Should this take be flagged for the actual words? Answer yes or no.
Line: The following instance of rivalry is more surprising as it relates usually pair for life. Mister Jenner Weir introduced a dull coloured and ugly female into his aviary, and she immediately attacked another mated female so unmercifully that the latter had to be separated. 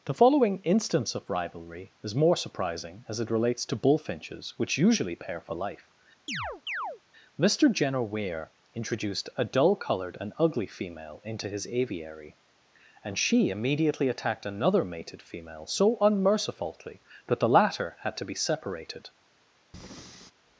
yes